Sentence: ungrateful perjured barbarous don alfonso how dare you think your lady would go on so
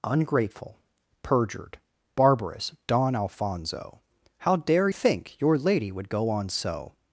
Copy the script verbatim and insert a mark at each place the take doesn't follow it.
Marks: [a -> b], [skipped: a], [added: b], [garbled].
ungrateful perjured barbarous don alfonso how dare [skipped: you] think your lady would go on so